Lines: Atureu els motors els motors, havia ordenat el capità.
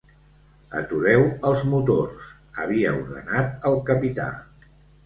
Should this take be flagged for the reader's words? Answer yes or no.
yes